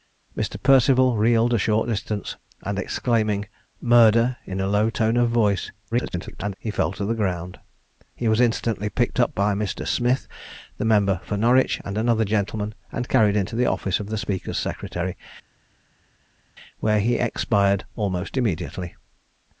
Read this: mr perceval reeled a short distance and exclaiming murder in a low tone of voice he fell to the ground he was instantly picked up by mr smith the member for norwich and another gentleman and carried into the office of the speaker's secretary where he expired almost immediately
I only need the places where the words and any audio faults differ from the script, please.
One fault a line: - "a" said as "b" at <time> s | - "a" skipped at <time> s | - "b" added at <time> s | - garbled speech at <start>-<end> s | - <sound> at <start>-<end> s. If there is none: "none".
- garbled speech at 5.9-6.5 s